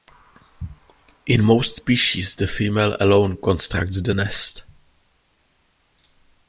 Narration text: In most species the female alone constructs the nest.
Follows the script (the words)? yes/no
yes